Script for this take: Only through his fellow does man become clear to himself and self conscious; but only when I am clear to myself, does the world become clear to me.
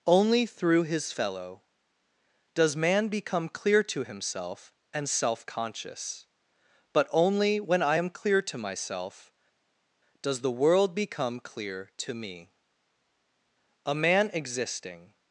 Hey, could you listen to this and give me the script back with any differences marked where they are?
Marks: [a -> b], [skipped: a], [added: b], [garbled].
Only through his fellow does man become clear to himself and self conscious; but only when I am clear to myself, does the world become clear to me. [added: A man existing]